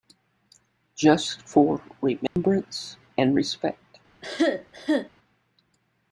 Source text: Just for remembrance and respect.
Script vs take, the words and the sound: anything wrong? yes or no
yes